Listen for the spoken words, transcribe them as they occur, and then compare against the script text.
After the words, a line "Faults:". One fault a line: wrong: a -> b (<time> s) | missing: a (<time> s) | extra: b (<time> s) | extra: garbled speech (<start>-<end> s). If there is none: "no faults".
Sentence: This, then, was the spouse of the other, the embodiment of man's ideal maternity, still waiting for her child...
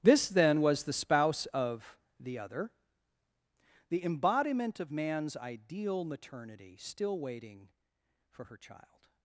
This, then, was the spouse of the other, the embodiment of man's ideal maternity, still waiting for her child...
Faults:
no faults